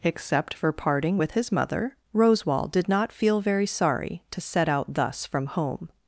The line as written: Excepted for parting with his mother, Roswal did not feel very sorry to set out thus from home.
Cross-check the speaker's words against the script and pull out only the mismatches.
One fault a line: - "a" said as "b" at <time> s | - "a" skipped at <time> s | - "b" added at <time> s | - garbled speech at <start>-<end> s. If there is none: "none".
- "Excepted" said as "Except" at 0.0 s